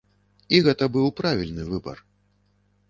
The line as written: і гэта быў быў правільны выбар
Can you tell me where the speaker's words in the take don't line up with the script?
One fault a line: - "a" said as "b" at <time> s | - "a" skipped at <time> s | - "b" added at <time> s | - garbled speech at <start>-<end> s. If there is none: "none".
- "быў" skipped at 1.1 s